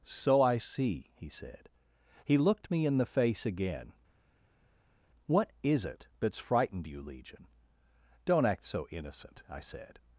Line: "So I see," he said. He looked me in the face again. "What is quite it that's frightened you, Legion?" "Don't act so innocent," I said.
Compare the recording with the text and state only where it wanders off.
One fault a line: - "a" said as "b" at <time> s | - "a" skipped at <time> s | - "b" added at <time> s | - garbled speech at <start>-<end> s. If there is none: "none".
- "quite" skipped at 5.8 s